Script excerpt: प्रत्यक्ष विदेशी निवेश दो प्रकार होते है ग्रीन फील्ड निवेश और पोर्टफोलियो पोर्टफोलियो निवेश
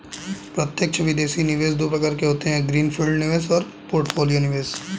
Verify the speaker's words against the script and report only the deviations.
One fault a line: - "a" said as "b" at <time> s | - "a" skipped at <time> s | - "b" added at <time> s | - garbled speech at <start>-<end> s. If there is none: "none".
- "के" added at 2.1 s
- "पोर्टफोलियो" skipped at 4.4 s